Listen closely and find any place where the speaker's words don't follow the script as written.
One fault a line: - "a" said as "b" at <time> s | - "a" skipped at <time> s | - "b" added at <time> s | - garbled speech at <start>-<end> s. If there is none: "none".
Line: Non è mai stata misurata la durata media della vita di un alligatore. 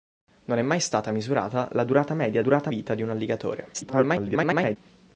- "della" said as "durata" at 2.4 s
- garbled speech at 3.7-4.8 s